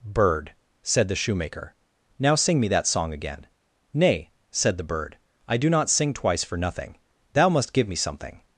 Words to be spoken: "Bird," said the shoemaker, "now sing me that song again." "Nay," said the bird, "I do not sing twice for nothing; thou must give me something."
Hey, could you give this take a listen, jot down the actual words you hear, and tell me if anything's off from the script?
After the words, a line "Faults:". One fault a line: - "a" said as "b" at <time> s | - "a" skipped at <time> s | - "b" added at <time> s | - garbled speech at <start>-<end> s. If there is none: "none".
"Bird," said the shoemaker, "now sing me that song again." "Nay," said the bird, "I do not sing twice for nothing; thou must give me something."
Faults:
none